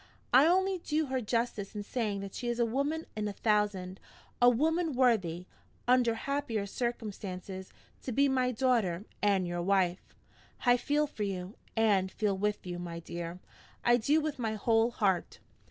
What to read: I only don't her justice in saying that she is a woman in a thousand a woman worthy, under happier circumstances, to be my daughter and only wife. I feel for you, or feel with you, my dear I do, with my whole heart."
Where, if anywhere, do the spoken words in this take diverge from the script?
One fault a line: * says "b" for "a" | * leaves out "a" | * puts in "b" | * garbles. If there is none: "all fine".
* says "do" for "don't"
* says "your" for "only"
* says "and" for "or"